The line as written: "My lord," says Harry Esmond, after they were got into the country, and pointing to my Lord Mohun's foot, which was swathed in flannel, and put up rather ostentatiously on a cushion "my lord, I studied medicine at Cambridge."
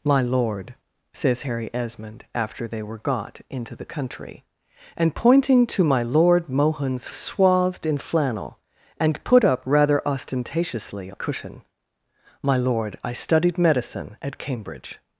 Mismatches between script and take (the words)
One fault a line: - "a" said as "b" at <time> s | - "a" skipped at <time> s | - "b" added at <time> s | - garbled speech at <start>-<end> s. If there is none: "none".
- "foot which was" skipped at 7.1 s
- "on" skipped at 11.1 s